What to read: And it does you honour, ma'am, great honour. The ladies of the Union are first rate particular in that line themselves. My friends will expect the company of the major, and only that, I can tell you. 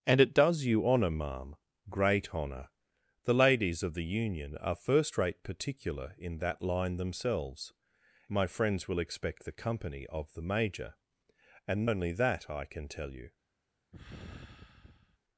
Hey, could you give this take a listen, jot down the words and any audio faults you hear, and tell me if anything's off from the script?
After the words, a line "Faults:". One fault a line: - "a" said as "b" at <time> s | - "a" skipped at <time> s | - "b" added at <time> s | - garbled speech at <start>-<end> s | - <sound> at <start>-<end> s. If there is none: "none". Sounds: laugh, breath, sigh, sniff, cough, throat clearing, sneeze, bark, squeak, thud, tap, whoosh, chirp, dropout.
And it does you honour, ma'am, great honour. The ladies of the Union are first rate particular in that line themselves. My friends will expect the company of the major, and only that, I can tell you.
Faults:
- sigh at 13.9-15.2 s